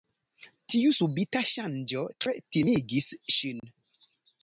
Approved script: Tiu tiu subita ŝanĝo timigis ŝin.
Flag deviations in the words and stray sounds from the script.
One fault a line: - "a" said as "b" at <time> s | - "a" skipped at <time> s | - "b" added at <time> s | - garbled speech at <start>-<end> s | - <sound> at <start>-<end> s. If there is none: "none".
- "tiu" skipped at 0.9 s
- "tre" added at 2.2 s
- dropout at 3.6-3.6 s